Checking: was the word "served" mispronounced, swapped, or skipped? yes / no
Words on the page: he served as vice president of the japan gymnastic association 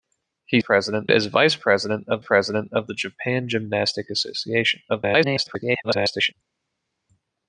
yes